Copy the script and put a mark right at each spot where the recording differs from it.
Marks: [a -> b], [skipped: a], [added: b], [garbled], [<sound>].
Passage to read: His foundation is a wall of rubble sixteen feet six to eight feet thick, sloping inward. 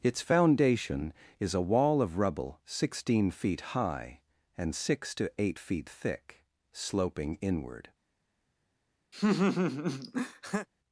[His -> Its] foundation is a wall of rubble sixteen feet [added: high and] six to eight feet thick, sloping inward. [laugh]